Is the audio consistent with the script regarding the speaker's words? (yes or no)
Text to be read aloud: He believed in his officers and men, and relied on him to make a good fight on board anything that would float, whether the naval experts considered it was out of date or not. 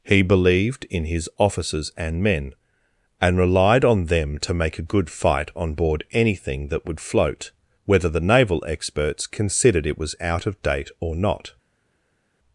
no